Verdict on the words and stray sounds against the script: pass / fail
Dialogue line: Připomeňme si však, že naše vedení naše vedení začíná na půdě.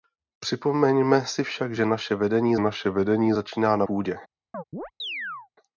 fail